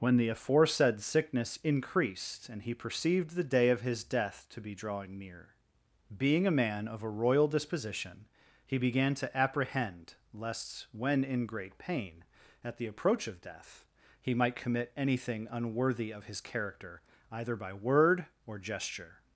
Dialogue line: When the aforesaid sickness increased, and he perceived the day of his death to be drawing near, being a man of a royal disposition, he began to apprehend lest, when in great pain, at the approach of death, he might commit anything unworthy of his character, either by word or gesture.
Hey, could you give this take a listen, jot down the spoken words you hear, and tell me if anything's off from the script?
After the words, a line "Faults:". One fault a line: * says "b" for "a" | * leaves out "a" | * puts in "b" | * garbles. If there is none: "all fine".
When the aforesaid sickness increased, and he perceived the day of his death to be drawing near, being a man of a royal disposition, he began to apprehend lest, when in great pain, at the approach of death, he might commit anything unworthy of his character, either by word or gesture.
Faults:
all fine